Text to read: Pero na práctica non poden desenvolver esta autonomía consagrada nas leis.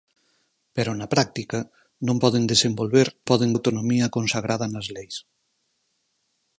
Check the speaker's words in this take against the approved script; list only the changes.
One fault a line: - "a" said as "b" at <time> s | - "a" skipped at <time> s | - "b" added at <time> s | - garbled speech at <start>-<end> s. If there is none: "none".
- "esta" said as "poden" at 3.3 s